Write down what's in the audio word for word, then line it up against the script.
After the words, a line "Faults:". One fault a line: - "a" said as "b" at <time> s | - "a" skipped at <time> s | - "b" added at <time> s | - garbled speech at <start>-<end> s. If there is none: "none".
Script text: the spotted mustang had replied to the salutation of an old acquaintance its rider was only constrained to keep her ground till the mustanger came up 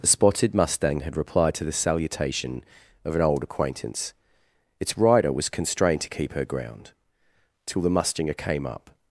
the spotted mustang had replied to the salutation of an old acquaintance its rider was constrained to keep her ground till the mustanger came up
Faults:
- "only" skipped at 5.5 s